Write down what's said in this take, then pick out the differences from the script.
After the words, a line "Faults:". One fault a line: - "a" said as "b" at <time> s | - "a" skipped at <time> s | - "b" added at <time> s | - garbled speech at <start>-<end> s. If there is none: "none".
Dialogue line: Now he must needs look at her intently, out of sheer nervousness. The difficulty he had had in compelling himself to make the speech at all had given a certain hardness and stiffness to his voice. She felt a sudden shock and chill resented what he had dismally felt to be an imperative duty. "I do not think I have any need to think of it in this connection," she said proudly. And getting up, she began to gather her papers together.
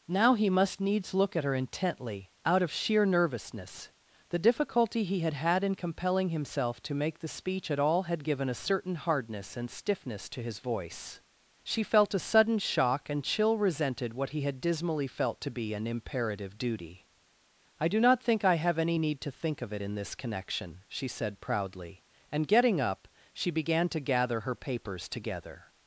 Now he must needs look at her intently, out of sheer nervousness. The difficulty he had had in compelling himself to make the speech at all had given a certain hardness and stiffness to his voice. She felt a sudden shock and chill resented what he had dismally felt to be an imperative duty. "I do not think I have any need to think of it in this connection," she said proudly. And getting up, she began to gather her papers together.
Faults:
none